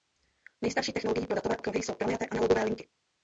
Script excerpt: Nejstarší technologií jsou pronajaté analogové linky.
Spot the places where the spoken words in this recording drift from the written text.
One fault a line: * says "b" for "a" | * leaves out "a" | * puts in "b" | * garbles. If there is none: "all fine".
* puts in "pro datové okruhy"